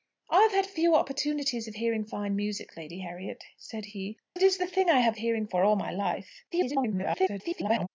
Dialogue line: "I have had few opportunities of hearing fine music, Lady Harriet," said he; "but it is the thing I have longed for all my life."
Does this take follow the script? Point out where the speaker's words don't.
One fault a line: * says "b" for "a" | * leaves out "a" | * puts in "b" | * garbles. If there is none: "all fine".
* leaves out "but"
* says "hearing" for "longed"
* garbles